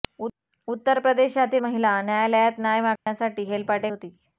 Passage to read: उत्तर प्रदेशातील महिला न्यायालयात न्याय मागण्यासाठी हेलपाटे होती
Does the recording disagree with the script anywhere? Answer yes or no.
no